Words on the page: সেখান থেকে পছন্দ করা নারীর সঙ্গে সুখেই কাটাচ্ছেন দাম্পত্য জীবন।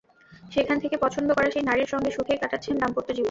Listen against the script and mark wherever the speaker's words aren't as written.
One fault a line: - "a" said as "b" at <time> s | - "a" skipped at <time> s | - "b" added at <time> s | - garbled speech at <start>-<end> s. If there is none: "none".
- "সেই" added at 1.5 s